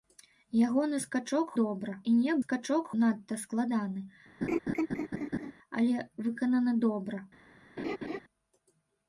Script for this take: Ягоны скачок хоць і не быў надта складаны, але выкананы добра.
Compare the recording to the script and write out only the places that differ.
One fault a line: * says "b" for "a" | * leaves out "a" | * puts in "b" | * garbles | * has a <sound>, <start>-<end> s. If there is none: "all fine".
* says "добра" for "хоць"
* says "скачок" for "быў"
* has a laugh, 4.4-5.5 s
* has a laugh, 7.8-8.2 s